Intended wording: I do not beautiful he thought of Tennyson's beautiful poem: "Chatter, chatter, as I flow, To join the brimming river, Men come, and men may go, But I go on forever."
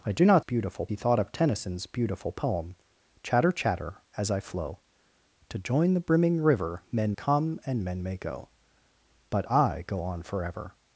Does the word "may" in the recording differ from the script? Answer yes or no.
no